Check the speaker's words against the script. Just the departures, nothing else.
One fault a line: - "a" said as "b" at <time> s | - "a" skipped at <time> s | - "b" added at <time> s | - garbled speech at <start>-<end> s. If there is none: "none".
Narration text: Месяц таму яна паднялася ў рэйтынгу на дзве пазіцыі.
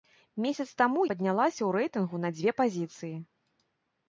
- "яна" skipped at 1.0 s